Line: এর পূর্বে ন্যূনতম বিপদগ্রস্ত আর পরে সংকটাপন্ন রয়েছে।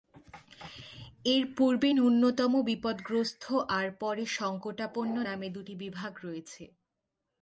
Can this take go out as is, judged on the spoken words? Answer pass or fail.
fail